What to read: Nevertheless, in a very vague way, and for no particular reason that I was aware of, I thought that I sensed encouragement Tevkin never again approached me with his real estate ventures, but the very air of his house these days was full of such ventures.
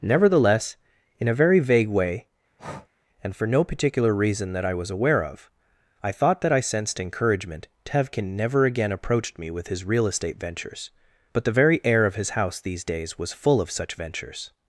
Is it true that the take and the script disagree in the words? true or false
false